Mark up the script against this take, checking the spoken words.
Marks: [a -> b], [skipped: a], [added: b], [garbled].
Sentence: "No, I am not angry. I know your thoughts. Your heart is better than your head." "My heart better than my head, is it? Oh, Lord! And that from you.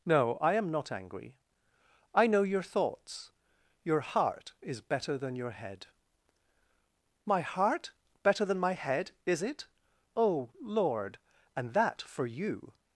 "No, I am not angry. I know your thoughts. Your heart is better than your head." "My heart better than my head, is it? Oh, Lord! And that [from -> for] you.